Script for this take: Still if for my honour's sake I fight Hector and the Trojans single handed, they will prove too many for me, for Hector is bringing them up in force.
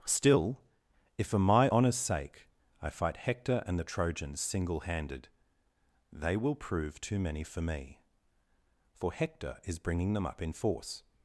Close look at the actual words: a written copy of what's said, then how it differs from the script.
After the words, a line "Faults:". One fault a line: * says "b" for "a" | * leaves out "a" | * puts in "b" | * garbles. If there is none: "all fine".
Still if for my honour's sake I fight Hector and the Trojans single handed, they will prove too many for me, for Hector is bringing them up in force.
Faults:
all fine